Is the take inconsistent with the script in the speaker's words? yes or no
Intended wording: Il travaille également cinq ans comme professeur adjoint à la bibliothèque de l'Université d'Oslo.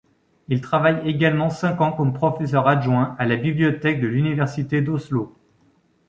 no